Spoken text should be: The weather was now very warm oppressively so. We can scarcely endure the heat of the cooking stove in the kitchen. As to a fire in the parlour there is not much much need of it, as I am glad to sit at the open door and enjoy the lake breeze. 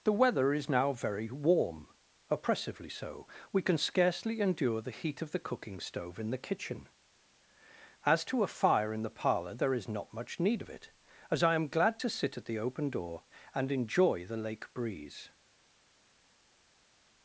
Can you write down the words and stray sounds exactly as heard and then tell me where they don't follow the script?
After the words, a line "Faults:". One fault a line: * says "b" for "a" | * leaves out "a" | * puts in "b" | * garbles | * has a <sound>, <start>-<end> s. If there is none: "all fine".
The weather is now very warm oppressively so. We can scarcely endure the heat of the cooking stove in the kitchen. As to a fire in the parlour there is not much need of it, as I am glad to sit at the open door and enjoy the lake breeze.
Faults:
* says "is" for "was"
* leaves out "much"